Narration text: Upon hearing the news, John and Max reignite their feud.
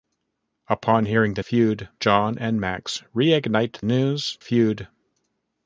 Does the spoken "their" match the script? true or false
false